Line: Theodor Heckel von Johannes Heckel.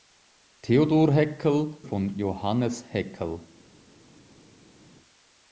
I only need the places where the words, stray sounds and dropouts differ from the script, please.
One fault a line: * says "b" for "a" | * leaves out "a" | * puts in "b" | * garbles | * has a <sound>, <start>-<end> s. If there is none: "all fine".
all fine